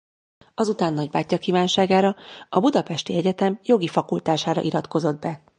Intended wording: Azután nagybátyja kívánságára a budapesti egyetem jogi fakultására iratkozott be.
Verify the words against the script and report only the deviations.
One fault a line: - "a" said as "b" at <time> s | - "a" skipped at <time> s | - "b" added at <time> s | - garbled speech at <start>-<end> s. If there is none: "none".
none